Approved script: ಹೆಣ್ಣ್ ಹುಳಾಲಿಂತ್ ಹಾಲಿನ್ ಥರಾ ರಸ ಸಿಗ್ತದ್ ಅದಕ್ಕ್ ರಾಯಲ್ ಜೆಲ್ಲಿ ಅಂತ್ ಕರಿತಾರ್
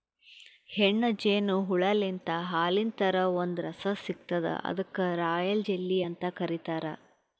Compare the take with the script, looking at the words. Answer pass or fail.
fail